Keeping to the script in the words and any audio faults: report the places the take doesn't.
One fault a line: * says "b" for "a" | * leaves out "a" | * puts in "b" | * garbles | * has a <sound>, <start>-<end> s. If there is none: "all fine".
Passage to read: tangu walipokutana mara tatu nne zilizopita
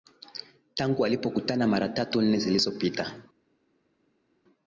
all fine